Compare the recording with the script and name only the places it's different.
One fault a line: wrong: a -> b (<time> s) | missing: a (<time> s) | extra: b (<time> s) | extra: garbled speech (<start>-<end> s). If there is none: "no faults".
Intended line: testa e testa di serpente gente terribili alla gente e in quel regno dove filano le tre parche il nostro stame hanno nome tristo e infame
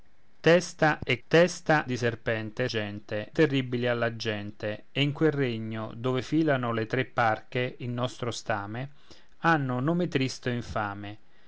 no faults